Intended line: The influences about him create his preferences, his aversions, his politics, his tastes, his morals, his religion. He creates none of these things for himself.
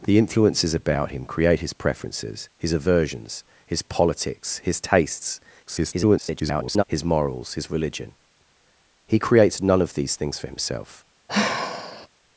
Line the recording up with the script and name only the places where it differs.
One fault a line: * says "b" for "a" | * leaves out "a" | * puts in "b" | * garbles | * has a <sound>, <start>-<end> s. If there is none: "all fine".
* garbles
* has a sigh, 11.3-12.1 s